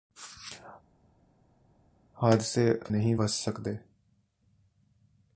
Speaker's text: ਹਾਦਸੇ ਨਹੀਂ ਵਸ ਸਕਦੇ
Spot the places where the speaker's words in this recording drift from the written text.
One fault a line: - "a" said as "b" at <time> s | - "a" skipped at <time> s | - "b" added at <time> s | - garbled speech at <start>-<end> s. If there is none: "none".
none